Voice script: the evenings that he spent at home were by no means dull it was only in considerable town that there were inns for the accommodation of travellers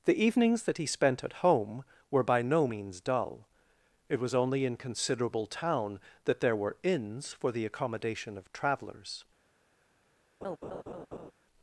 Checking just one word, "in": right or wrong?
right